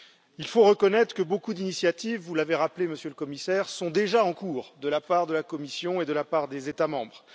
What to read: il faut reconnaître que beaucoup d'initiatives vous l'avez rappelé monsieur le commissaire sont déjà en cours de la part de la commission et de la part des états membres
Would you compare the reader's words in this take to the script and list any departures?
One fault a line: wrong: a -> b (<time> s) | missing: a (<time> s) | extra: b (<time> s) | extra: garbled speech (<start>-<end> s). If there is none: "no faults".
no faults